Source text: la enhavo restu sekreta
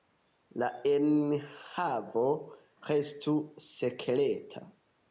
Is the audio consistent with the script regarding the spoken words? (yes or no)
yes